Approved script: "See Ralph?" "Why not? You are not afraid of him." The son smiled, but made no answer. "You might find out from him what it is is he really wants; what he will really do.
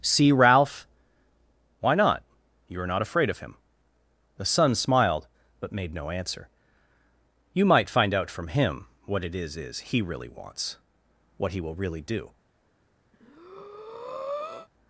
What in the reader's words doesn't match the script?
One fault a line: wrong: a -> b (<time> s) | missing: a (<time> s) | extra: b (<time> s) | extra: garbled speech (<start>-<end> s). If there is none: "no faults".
no faults